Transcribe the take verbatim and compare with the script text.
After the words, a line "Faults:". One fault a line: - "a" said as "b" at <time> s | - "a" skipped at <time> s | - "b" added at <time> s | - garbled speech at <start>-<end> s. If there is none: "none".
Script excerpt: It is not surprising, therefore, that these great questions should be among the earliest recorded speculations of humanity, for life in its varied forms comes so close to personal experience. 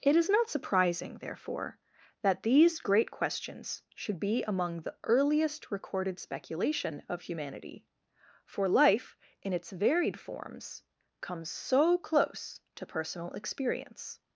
It is not surprising, therefore, that these great questions should be among the earliest recorded speculation of humanity, for life in its varied forms comes so close to personal experience.
Faults:
- "speculations" said as "speculation" at 6.2 s